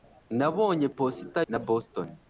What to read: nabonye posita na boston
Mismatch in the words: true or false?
false